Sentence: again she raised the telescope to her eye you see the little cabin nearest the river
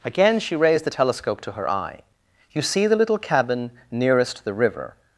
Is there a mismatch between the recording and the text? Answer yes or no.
no